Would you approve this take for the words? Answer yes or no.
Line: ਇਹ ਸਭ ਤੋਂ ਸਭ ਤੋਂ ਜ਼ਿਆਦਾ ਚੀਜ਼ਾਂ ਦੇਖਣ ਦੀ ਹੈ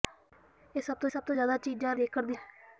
yes